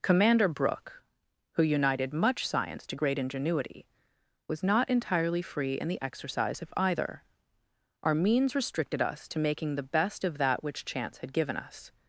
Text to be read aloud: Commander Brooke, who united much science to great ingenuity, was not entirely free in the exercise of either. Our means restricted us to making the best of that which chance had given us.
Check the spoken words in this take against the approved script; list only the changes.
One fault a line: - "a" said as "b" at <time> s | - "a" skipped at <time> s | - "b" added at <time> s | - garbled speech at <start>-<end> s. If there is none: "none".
none